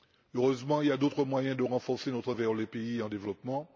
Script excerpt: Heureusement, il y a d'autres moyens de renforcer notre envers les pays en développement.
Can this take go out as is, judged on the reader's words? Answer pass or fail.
pass